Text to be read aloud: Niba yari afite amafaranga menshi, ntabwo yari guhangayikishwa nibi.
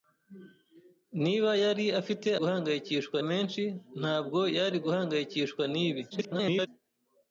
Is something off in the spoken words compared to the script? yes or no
yes